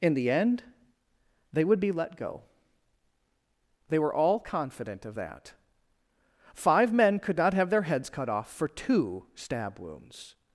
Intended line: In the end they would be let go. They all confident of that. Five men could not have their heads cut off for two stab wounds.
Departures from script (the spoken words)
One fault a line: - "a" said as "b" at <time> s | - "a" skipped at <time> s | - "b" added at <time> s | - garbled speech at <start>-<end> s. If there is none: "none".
- "were" added at 4.0 s